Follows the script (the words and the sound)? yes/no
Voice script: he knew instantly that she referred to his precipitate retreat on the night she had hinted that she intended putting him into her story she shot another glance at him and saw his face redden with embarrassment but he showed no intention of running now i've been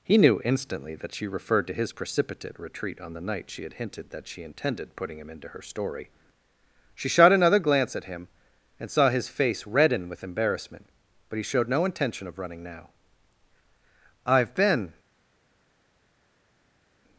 yes